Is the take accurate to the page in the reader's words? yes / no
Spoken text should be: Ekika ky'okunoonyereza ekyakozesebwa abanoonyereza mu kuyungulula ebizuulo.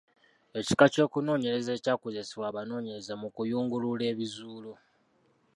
yes